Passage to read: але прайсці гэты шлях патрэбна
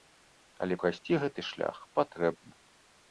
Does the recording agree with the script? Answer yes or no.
yes